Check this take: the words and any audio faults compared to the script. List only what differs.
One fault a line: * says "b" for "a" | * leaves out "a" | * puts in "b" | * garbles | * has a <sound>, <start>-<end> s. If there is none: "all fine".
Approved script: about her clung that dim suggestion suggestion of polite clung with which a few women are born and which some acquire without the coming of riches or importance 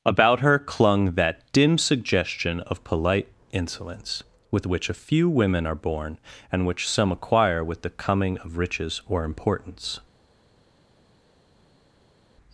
* leaves out "suggestion"
* says "insolence" for "clung"
* says "with" for "without"